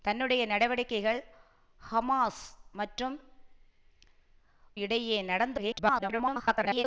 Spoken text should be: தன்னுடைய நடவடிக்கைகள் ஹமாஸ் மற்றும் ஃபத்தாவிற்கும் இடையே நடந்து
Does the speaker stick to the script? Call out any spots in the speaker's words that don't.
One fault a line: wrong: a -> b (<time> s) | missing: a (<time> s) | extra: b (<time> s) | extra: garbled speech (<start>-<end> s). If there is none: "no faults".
missing: ஃபத்தாவிற்கும் (3.1 s)
extra: garbled speech (5.6-6.8 s)